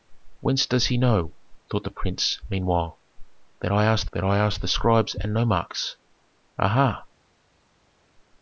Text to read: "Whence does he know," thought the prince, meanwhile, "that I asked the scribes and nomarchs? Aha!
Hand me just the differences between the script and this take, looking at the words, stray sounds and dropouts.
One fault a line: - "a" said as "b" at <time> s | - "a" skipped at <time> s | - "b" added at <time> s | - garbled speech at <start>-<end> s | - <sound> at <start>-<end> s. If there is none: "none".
- "that I asked" added at 4.1 s